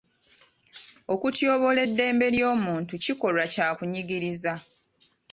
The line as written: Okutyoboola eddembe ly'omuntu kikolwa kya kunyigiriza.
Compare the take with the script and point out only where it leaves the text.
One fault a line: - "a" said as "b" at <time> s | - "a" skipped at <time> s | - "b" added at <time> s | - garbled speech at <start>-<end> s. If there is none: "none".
none